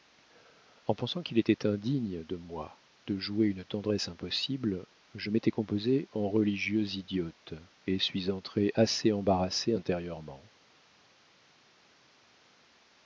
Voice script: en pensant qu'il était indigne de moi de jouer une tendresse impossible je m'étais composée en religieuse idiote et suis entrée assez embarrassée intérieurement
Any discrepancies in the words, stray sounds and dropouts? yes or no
no